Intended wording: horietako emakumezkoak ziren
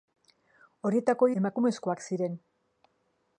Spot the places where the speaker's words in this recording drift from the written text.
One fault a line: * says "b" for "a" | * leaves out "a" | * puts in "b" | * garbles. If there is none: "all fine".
all fine